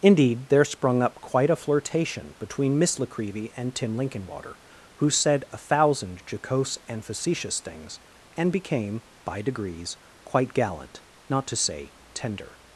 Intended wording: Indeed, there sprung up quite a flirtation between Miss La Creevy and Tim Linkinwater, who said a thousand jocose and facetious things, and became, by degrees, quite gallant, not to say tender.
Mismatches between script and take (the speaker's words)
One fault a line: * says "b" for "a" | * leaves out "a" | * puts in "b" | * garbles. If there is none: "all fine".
all fine